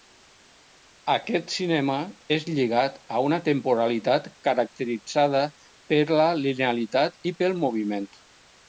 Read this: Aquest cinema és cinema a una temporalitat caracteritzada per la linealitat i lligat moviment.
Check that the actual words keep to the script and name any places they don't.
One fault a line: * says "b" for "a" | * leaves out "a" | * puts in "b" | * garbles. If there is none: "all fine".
* says "lligat" for "cinema"
* says "pel" for "lligat"